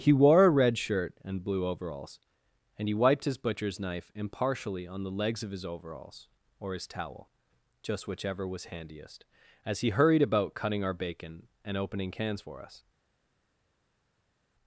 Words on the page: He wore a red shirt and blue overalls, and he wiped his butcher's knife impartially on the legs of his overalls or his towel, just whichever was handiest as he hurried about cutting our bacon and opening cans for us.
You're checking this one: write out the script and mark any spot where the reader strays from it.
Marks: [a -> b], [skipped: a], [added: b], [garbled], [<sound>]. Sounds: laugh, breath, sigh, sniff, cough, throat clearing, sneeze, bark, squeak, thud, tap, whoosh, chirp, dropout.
He wore a red shirt and blue overalls, and he wiped his butcher's knife impartially on the legs of his overalls or his towel, just whichever was handiest as he hurried about cutting our bacon and opening cans for us.